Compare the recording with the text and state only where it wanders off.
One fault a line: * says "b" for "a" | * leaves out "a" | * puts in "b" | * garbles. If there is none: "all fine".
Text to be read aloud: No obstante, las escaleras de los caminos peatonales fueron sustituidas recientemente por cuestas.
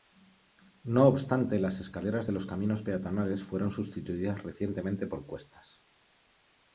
all fine